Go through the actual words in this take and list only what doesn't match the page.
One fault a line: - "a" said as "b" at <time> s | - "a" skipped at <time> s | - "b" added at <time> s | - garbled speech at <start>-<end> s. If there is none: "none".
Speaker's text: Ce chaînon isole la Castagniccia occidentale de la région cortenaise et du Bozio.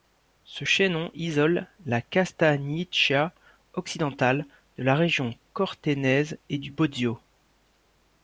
none